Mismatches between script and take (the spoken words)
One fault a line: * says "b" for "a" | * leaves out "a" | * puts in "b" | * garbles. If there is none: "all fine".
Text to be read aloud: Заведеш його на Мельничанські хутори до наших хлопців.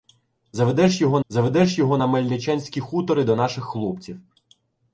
* puts in "заведеш його"